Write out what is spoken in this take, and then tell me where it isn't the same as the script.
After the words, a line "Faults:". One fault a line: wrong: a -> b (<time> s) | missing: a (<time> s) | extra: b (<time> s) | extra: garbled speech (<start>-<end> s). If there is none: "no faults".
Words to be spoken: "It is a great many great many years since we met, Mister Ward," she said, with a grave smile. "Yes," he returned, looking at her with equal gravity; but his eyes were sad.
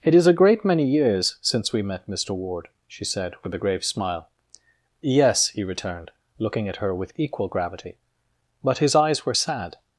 "It is a great many years since we met, Mister Ward," she said, with a grave smile. "Yes," he returned, looking at her with equal gravity; but his eyes were sad.
Faults:
missing: great many (0.8 s)